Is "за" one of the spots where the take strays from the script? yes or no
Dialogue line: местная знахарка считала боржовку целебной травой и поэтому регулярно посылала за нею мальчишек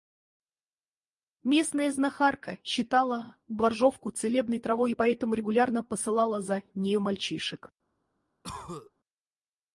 no